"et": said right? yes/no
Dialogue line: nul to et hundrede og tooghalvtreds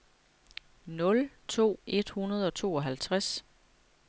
yes